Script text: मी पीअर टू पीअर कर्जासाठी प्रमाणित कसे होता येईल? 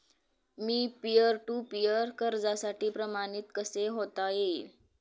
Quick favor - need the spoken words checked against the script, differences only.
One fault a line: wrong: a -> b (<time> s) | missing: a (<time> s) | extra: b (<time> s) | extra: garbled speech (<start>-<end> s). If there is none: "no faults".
no faults